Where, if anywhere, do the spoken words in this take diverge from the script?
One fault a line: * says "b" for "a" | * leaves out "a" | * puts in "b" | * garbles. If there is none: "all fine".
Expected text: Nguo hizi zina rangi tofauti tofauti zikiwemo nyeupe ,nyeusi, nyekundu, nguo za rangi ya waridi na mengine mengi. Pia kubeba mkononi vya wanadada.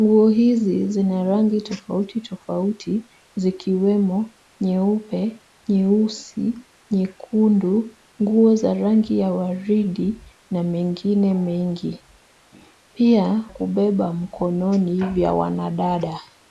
all fine